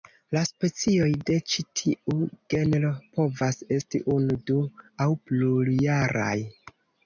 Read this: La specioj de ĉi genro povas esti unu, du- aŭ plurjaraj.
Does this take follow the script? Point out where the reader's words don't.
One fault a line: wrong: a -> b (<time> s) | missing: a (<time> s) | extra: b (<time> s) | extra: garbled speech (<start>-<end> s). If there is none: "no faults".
extra: tiu (1.8 s)